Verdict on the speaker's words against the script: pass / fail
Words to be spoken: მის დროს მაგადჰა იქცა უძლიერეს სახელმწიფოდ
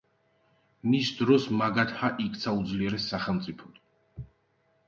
pass